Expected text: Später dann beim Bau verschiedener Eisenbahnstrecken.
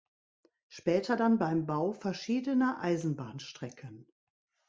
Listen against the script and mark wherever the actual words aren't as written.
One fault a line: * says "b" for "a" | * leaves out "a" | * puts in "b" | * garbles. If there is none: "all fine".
all fine